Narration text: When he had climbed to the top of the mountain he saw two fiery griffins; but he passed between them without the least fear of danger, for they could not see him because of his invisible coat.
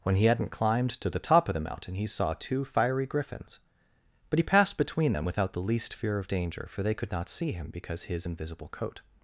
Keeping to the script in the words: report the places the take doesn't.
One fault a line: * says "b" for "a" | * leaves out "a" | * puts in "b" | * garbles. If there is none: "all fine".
* says "hadn't" for "had"
* leaves out "of"